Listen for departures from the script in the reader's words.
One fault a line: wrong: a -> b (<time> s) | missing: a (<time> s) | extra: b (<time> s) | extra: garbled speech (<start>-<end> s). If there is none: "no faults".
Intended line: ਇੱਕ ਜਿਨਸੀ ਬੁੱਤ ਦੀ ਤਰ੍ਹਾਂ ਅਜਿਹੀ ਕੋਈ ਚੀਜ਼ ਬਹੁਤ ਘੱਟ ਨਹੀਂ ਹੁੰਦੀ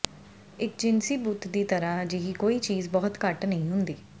no faults